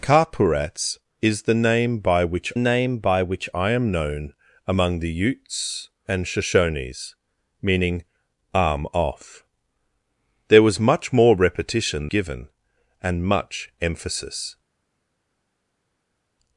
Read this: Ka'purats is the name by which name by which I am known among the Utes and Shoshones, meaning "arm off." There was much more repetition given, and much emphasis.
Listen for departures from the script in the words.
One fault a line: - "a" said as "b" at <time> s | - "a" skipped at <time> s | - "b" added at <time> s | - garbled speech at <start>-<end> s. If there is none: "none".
none